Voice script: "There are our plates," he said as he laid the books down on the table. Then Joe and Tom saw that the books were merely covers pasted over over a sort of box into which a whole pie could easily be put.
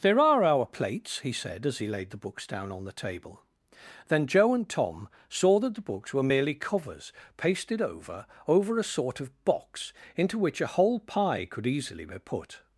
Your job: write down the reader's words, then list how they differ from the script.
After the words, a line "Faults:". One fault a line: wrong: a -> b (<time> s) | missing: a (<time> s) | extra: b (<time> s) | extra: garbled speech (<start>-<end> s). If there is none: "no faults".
"There are our plates," he said as he laid the books down on the table. Then Joe and Tom saw that the books were merely covers pasted over over a sort of box into which a whole pie could easily be put.
Faults:
no faults